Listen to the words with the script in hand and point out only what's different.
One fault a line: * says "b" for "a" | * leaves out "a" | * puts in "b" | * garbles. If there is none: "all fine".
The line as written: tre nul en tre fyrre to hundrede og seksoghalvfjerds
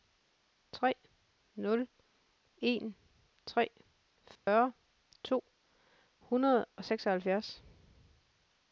all fine